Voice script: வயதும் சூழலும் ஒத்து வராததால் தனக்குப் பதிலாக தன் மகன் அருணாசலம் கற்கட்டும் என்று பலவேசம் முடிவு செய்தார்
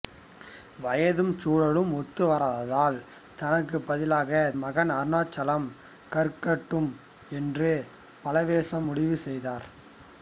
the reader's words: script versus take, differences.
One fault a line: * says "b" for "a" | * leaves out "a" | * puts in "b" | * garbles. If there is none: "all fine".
* leaves out "தன்"